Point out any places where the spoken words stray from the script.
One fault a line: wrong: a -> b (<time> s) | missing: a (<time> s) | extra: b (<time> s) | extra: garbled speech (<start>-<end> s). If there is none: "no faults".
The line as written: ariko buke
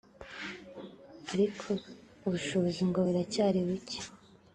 extra: ubushobozi ngo buracyari (2.3 s)